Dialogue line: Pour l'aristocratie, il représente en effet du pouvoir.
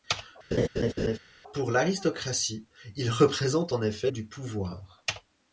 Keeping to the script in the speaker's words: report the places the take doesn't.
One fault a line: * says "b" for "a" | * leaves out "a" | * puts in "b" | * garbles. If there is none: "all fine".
all fine